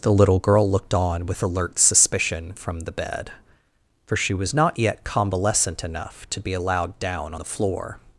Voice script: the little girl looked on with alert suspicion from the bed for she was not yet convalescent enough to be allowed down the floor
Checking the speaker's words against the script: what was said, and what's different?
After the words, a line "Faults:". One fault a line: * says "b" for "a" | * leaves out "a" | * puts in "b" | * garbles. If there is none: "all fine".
the little girl looked on with alert suspicion from the bed for she was not yet convalescent enough to be allowed down the floor
Faults:
all fine